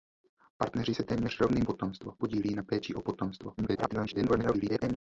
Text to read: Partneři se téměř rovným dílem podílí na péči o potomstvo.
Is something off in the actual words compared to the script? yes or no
yes